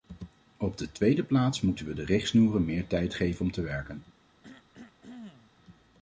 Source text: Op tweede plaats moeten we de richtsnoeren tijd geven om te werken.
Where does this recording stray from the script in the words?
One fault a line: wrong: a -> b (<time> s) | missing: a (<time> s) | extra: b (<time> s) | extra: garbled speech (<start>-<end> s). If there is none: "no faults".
extra: de (0.8 s)
extra: meer (2.6 s)